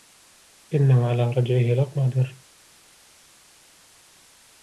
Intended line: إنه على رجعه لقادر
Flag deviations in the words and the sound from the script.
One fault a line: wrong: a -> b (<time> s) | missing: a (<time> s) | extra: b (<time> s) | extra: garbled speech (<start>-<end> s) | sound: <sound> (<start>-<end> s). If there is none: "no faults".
no faults